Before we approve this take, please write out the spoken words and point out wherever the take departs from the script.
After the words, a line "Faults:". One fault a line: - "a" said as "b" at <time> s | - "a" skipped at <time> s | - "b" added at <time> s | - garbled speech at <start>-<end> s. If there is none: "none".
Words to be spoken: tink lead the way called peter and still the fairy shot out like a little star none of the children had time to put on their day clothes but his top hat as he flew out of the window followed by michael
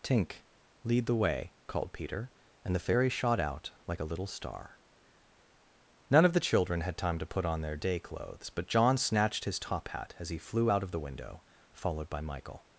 tink lead the way called peter and the fairy shot out like a little star none of the children had time to put on their day clothes but john snatched his top hat as he flew out of the window followed by michael
Faults:
- "still" skipped at 2.7 s
- "john snatched" added at 8.7 s